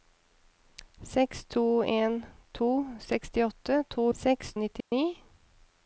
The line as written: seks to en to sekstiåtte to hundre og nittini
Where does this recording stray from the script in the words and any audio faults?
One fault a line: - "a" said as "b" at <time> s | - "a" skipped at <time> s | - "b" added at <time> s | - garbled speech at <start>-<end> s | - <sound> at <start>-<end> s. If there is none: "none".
- "hundre" said as "seks" at 4.2 s
- dropout at 4.8-4.9 s